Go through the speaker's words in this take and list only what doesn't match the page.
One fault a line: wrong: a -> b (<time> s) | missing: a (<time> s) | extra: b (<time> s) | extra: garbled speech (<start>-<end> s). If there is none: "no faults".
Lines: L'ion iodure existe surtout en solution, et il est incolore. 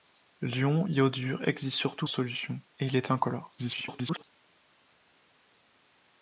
missing: en (2.1 s)
extra: garbled speech (3.6-4.2 s)